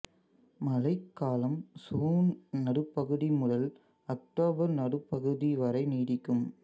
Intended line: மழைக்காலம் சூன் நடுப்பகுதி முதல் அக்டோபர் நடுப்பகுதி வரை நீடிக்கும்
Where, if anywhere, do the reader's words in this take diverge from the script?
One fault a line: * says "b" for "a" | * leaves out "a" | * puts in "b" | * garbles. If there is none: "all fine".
all fine